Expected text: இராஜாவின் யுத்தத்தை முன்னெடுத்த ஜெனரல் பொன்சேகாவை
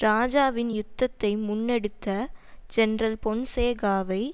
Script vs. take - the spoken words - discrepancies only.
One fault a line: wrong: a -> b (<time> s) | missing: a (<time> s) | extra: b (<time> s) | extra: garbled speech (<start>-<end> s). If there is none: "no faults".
no faults